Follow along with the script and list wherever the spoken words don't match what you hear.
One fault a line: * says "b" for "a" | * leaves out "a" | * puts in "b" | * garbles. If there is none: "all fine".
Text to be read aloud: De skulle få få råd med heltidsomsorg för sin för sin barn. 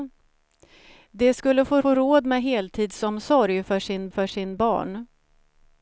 all fine